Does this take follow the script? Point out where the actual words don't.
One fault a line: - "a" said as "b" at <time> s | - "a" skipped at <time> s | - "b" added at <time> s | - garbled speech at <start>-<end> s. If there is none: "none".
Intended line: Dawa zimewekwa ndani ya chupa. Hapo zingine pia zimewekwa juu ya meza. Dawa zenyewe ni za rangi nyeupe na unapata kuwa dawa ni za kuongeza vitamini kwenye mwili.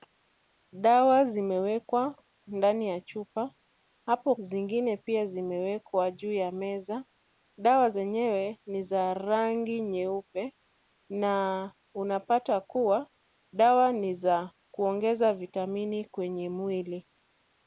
none